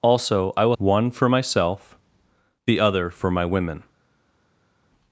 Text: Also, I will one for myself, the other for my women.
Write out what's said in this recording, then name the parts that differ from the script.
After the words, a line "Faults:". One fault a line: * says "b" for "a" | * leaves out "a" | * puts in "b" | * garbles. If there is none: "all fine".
Also, I will one for myself, the other for my women.
Faults:
all fine